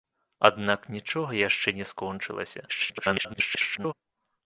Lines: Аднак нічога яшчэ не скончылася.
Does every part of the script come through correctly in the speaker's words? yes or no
no